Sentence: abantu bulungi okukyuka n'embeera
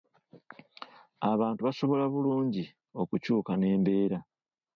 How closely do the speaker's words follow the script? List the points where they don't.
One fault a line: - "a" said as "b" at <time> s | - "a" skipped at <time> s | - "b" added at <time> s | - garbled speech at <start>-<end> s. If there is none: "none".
- "basobola" added at 1.7 s